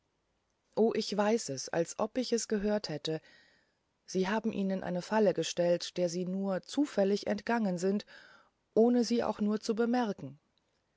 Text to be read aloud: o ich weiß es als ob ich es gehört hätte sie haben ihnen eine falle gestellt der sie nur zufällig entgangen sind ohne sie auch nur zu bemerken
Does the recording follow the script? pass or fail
pass